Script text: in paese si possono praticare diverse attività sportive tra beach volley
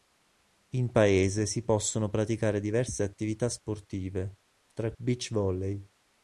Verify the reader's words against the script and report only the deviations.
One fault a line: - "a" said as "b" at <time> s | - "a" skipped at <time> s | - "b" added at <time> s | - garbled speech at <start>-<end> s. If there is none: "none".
none